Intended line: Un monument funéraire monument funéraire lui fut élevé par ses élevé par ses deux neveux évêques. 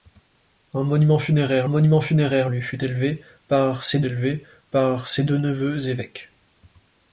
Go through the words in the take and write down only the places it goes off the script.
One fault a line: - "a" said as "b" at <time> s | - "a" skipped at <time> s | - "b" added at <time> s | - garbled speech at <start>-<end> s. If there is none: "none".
none